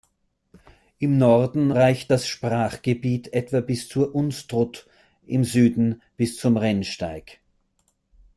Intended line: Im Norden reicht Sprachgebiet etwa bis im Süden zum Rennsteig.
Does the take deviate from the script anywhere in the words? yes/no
yes